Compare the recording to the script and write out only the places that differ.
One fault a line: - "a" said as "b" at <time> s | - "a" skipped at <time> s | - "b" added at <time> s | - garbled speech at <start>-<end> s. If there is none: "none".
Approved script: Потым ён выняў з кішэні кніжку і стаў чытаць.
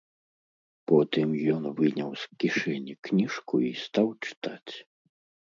none